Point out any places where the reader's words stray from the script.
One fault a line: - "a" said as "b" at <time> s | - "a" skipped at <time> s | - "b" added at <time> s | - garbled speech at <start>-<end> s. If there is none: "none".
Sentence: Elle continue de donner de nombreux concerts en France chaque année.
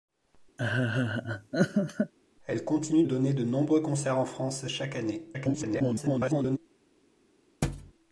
- "de" skipped at 3.0 s
- garbled speech at 5.3-6.6 s